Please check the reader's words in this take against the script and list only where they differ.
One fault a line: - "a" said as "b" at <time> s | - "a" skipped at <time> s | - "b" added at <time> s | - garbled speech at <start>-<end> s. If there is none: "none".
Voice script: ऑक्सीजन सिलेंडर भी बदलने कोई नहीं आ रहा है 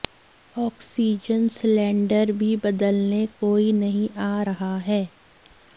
none